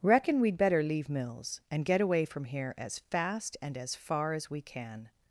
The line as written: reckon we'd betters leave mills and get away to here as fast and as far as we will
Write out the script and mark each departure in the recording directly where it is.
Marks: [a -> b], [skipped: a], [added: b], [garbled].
reckon we'd [betters -> better] leave mills and get away [to -> from] here as fast and as far as we [will -> can]